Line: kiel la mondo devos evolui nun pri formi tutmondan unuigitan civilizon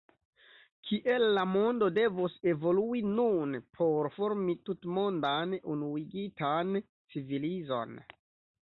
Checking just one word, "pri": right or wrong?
wrong